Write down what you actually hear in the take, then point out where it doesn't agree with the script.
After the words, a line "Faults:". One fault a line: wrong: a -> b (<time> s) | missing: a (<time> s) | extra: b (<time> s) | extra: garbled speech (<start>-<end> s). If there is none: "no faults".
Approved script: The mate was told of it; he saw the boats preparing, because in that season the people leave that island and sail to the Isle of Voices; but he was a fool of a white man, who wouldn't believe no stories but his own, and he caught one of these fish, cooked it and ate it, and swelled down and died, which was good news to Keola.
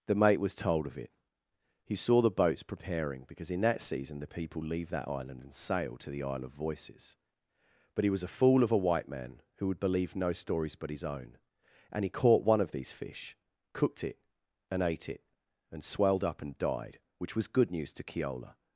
The mate was told of it; he saw the boats preparing, because in that season the people leave that island and sail to the Isle of Voices; but he was a fool of a white man, who would believe no stories but his own, and he caught one of these fish, cooked it and ate it, and swelled up and died, which was good news to Keola.
Faults:
wrong: wouldn't -> would (9.7 s)
wrong: down -> up (16.2 s)